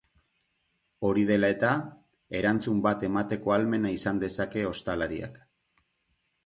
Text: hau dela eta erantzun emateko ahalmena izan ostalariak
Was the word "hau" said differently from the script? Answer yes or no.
yes